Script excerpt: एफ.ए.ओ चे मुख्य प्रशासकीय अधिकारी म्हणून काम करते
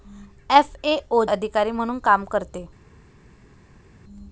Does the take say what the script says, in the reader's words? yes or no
no